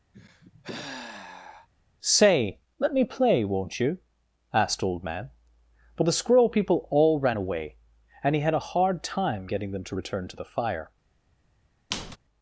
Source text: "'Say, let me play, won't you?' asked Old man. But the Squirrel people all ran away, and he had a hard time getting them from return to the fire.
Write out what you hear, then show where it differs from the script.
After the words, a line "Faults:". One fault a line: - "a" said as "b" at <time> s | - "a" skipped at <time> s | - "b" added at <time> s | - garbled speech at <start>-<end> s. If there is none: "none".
"'Say, let me play, won't you?' asked Old man. But the Squirrel people all ran away, and he had a hard time getting them to return to the fire.
Faults:
- "from" said as "to" at 9.8 s